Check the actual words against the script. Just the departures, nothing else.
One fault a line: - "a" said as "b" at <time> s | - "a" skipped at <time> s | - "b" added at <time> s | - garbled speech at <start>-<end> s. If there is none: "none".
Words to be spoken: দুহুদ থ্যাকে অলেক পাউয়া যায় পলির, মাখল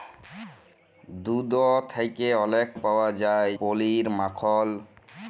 none